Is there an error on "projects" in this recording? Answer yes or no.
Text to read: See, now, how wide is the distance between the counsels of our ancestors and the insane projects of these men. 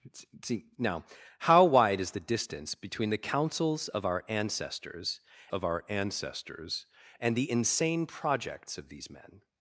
no